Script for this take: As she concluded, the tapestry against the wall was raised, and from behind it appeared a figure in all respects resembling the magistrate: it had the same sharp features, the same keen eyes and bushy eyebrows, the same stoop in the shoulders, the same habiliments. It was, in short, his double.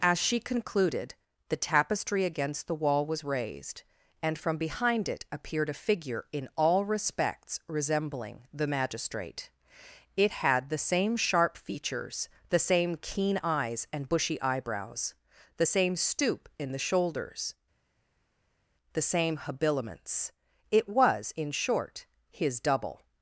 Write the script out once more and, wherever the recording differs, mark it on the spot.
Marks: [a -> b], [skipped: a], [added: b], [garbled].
As she concluded, the tapestry against the wall was raised, and from behind it appeared a figure in all respects resembling the magistrate: it had the same sharp features, the same keen eyes and bushy eyebrows, the same stoop in the shoulders, the same habiliments. It was, in short, his double.